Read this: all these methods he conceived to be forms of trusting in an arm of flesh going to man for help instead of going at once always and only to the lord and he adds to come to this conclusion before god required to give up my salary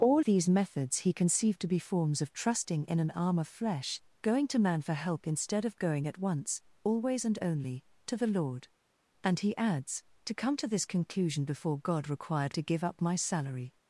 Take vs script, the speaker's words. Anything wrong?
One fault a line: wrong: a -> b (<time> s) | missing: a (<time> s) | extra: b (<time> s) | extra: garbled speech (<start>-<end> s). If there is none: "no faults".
no faults